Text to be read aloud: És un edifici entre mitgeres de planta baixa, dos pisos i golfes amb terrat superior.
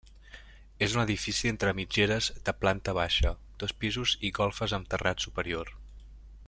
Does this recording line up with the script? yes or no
yes